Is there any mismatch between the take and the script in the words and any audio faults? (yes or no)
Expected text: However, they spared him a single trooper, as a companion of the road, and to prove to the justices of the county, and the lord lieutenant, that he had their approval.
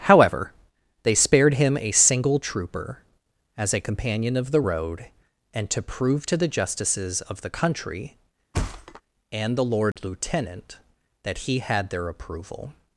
yes